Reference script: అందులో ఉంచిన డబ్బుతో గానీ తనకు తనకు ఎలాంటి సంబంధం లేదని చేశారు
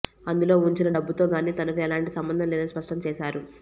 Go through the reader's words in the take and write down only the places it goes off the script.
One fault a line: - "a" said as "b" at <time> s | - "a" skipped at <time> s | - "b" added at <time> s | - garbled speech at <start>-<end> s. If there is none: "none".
- "తనకు" skipped at 1.8 s
- "స్పష్టం" added at 2.7 s